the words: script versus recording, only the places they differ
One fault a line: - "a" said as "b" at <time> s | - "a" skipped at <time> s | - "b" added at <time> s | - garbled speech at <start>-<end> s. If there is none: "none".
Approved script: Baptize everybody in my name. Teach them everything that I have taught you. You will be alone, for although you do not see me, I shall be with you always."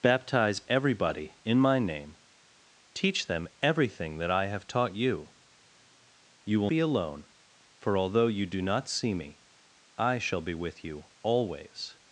none